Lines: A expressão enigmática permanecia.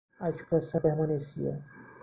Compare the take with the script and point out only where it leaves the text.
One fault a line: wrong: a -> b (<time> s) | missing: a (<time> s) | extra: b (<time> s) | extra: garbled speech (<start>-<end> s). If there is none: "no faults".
missing: enigmática (0.8 s)